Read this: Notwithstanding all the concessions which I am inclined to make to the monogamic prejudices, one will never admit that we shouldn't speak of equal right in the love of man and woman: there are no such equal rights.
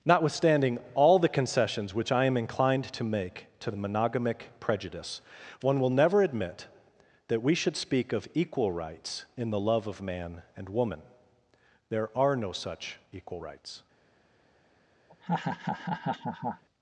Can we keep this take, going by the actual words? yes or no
no